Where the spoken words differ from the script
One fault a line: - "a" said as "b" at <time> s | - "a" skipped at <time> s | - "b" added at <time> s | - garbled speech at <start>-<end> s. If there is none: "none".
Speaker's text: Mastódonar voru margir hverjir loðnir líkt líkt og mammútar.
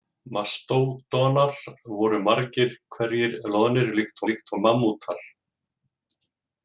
none